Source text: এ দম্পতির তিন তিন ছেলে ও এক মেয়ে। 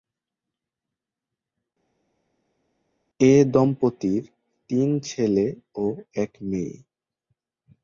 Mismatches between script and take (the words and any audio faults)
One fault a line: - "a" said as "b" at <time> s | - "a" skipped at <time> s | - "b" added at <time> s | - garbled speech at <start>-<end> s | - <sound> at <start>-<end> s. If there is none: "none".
- "তিন" skipped at 4.9 s